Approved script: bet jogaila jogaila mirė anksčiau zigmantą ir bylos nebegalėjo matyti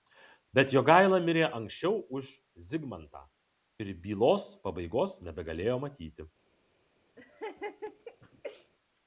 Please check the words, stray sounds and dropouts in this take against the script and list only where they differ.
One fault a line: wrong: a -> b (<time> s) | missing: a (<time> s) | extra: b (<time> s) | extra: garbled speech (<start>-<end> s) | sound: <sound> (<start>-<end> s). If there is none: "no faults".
missing: jogaila (1.2 s)
extra: už (2.2 s)
extra: pabaigos (4.7 s)
sound: laugh (7.2-8.7 s)